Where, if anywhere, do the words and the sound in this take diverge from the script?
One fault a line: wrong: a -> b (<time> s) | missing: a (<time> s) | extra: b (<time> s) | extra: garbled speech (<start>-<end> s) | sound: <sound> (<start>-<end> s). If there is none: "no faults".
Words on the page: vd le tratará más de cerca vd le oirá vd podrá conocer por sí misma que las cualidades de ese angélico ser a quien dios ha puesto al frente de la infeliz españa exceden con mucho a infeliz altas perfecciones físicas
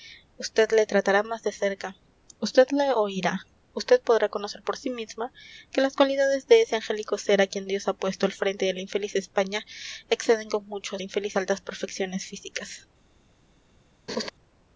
sound: laugh (14.1-14.3 s)